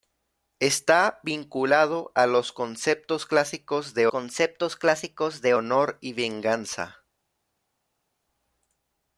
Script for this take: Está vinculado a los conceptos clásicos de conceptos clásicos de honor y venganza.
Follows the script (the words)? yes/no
yes